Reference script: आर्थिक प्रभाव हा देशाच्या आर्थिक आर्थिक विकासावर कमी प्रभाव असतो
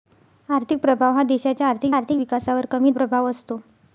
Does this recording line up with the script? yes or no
yes